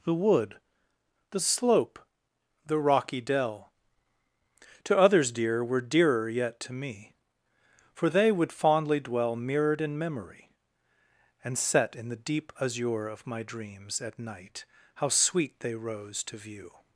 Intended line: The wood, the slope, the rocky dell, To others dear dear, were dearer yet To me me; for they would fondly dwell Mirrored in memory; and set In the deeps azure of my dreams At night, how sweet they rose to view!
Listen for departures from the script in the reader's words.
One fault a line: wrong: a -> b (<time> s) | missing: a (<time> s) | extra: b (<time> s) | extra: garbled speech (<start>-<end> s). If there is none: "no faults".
missing: dear (5.6 s)
missing: me (7.1 s)
wrong: deeps -> deep (12.2 s)